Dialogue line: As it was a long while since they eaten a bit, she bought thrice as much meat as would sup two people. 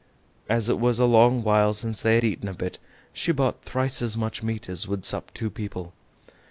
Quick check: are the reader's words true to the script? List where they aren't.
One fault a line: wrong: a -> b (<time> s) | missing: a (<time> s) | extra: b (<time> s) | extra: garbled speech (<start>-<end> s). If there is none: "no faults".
no faults